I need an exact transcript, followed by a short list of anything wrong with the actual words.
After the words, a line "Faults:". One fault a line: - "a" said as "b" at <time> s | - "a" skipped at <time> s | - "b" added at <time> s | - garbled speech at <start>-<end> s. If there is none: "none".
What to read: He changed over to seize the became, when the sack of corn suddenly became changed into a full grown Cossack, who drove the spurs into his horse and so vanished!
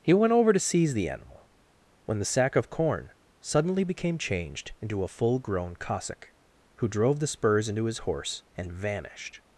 He went over to seize the animal, when the sack of corn suddenly became changed into a full grown Cossack, who drove the spurs into his horse and vanished!
Faults:
- "changed" said as "went" at 0.1 s
- "became" said as "animal" at 1.1 s
- "so" skipped at 8.7 s